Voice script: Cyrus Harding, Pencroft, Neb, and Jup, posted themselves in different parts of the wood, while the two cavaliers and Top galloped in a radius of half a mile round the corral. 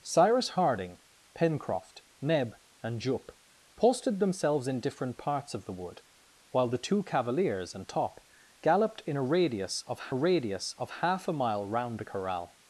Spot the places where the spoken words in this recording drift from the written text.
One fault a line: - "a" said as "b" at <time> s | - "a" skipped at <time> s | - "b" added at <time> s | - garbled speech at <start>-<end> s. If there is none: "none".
- "radius of" added at 10.1 s